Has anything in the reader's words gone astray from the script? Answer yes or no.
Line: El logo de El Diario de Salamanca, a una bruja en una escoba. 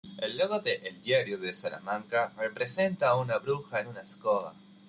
yes